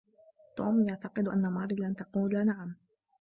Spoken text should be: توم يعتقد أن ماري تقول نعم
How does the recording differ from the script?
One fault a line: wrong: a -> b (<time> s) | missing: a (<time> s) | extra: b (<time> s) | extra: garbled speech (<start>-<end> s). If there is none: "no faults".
extra: لن (1.8 s)